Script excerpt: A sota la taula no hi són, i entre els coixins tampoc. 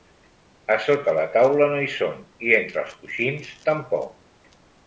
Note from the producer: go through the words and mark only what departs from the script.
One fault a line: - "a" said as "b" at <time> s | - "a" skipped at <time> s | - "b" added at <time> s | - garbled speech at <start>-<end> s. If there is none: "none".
none